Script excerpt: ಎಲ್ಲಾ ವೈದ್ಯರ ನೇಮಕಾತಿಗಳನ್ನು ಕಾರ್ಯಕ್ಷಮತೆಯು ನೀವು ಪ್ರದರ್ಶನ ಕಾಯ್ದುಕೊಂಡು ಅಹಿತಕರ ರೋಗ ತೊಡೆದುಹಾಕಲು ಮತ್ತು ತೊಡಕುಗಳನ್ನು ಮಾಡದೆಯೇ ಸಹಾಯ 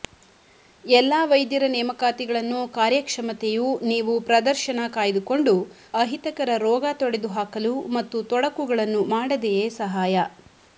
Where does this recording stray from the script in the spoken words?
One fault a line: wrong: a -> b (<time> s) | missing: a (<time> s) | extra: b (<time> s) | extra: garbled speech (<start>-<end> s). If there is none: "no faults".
no faults